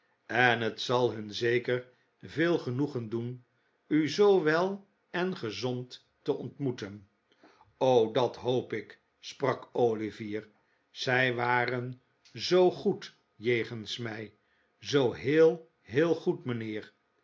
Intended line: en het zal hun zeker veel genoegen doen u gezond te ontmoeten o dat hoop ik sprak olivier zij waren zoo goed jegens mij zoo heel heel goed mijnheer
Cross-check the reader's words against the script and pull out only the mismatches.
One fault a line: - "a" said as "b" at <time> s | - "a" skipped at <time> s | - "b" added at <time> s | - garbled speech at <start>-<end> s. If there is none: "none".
- "zoo wel en" added at 4.1 s